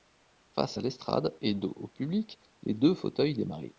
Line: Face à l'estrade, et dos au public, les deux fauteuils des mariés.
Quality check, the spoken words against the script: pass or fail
pass